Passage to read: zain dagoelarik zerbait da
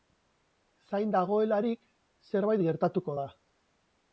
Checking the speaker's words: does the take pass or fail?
fail